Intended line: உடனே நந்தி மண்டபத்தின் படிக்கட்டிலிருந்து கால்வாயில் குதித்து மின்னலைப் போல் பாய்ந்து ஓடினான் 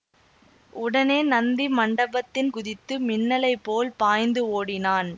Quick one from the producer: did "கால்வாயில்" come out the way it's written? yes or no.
no